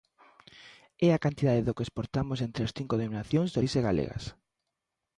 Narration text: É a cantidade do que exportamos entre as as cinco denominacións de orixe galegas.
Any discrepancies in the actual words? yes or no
yes